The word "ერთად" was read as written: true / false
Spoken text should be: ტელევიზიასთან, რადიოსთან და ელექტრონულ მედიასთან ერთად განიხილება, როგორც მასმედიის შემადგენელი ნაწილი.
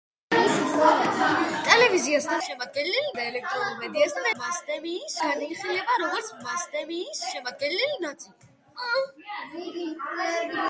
false